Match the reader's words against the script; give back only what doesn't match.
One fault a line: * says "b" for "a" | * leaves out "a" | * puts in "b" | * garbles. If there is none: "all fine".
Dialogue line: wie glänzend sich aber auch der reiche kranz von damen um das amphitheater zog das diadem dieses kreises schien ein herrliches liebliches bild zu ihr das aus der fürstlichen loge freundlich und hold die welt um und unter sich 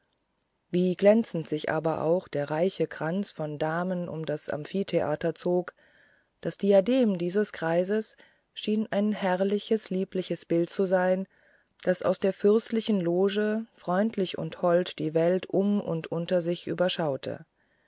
* says "sein" for "ihr"